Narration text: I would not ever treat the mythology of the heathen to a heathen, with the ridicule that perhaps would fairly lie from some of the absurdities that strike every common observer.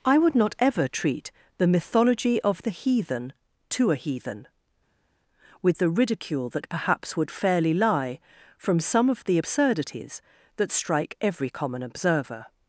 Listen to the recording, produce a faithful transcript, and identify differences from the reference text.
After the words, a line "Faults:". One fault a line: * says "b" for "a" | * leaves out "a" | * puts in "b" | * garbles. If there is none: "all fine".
I would not ever treat the mythology of the heathen to a heathen, with the ridicule that perhaps would fairly lie from some of the absurdities that strike every common observer.
Faults:
all fine